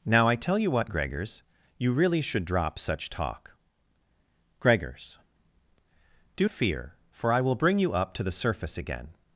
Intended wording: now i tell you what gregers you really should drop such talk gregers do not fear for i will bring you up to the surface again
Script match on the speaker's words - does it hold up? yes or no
no